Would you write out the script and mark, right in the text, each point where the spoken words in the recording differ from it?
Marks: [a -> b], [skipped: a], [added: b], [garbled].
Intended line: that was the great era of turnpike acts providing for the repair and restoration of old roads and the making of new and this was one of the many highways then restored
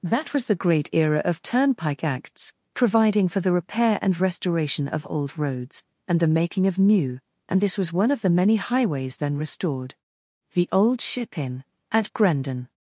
that was the great era of turnpike acts providing for the repair and restoration of old roads and the making of new and this was one of the many highways then restored [added: the old ship inn at grendon]